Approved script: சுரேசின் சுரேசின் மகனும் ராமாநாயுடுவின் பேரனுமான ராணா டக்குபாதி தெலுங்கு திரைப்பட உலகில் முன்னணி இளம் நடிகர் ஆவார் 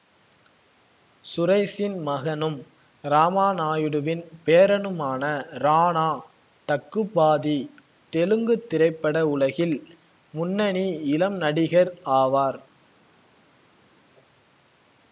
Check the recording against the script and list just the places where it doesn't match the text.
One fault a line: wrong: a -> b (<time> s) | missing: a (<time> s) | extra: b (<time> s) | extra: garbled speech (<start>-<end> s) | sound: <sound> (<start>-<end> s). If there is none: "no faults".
missing: சுரேசின் (2.0 s)